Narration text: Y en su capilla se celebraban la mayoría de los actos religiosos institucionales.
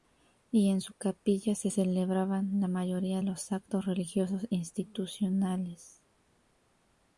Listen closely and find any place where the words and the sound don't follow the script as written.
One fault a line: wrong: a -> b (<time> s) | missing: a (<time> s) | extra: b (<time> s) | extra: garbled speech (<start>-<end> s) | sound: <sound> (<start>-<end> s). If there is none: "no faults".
missing: de (3.2 s)